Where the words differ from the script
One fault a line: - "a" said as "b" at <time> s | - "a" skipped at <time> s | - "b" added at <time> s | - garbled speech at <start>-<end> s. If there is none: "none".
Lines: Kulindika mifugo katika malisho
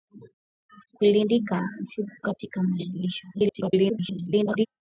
- garbled speech at 3.3-4.7 s